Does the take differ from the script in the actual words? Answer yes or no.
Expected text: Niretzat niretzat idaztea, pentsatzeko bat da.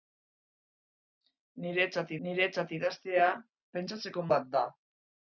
no